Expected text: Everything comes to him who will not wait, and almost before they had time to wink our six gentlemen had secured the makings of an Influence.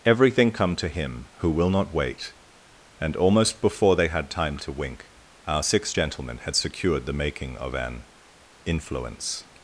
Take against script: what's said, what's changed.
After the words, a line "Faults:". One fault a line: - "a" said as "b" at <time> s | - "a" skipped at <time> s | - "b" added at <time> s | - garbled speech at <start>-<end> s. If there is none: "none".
Everything come to him who will not wait, and almost before they had time to wink our six gentlemen had secured the making of an Influence.
Faults:
- "comes" said as "come" at 0.5 s
- "makings" said as "making" at 7.1 s